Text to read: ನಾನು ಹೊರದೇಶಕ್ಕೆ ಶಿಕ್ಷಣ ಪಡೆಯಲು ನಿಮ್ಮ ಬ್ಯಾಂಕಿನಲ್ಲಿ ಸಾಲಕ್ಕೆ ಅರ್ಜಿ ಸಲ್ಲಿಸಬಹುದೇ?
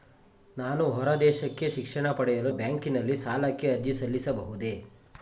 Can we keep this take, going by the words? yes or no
no